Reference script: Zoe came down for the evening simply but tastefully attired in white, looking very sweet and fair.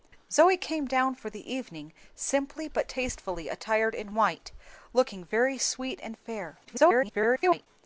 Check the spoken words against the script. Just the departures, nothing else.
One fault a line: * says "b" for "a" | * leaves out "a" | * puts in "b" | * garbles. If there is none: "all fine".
* garbles